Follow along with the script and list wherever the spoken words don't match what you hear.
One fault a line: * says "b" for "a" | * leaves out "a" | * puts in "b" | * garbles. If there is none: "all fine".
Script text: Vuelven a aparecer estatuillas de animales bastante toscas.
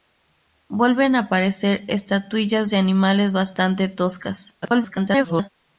* garbles